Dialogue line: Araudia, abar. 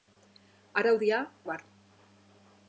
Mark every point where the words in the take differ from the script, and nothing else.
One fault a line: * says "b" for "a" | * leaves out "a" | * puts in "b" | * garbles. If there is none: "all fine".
all fine